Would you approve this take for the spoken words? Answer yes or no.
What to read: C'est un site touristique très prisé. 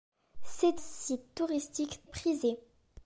no